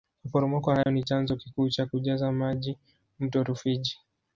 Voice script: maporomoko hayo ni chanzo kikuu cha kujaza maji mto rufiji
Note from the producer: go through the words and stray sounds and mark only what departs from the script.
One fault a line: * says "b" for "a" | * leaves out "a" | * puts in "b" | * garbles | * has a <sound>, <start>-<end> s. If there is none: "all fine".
* has a dropout, 0.8-0.9 s